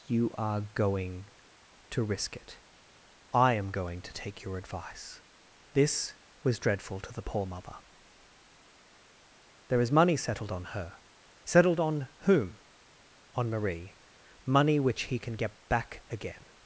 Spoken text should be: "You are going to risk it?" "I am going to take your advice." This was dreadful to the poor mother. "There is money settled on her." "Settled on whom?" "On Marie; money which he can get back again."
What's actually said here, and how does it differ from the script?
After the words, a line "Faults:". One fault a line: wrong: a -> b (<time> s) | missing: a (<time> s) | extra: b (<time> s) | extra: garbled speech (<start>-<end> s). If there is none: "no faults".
"You are going to risk it?" "I am going to take your advice." This was dreadful to the poor mother. "There is money settled on her." "Settled on whom?" "On Marie; money which he can get back again."
Faults:
no faults